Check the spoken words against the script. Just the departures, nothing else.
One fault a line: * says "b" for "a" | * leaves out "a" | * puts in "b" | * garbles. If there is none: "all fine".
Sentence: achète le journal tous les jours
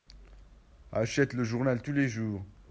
all fine